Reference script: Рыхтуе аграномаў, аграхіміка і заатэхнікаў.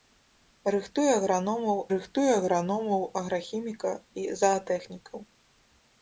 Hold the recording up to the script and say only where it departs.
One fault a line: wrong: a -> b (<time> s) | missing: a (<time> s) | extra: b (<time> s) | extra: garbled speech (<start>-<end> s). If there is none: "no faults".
extra: рыхтуе аграномаў (1.9 s)